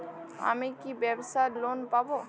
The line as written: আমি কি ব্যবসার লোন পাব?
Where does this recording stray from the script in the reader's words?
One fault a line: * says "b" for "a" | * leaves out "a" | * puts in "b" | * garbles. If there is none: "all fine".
all fine